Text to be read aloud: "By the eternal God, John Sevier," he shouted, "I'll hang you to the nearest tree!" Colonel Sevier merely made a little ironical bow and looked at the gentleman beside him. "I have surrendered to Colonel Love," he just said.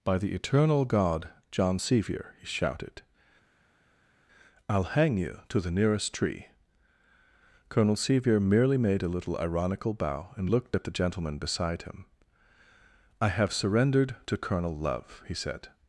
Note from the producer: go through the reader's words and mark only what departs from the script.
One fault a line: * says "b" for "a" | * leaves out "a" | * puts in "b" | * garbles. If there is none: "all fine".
* leaves out "just"